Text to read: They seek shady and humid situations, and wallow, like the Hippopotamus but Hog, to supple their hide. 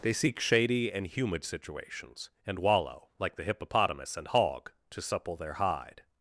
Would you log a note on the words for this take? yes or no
yes